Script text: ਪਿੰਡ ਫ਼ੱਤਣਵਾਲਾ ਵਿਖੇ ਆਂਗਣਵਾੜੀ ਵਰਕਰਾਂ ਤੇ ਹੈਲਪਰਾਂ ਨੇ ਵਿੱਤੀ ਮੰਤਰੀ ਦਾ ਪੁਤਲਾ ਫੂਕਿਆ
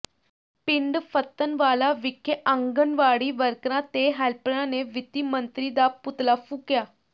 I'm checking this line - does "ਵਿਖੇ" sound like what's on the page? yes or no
yes